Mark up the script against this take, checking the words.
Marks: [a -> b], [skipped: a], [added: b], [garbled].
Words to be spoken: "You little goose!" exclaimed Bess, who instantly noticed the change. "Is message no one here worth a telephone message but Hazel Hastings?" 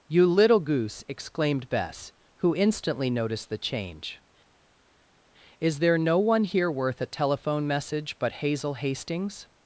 "You little goose!" exclaimed Bess, who instantly noticed the change. "Is [message -> there] no one here worth a telephone message but Hazel Hastings?"